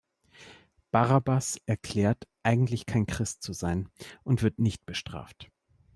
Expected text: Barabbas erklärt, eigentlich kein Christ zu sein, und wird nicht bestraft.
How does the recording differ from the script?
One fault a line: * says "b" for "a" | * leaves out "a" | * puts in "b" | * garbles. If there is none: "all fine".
all fine